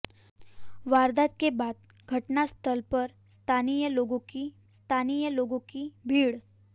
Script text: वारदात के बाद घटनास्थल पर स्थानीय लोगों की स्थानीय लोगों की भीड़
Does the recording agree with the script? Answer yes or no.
yes